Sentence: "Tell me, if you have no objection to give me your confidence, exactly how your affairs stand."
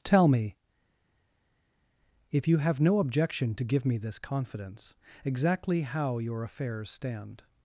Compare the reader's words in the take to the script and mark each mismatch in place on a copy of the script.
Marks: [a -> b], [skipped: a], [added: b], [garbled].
"Tell me, if you have no objection to give me [your -> this] confidence, exactly how your affairs stand."